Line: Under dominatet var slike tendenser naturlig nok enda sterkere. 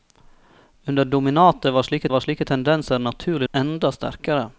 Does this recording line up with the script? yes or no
no